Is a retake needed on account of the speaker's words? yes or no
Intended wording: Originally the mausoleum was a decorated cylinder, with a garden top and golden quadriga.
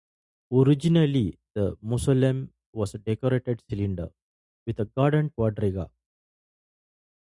yes